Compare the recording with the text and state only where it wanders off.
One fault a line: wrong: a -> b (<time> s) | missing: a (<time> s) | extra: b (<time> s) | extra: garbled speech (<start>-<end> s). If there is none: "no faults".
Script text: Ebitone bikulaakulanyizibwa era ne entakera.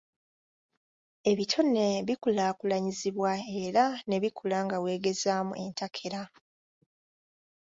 extra: bikula nga weegezaamu (4.2 s)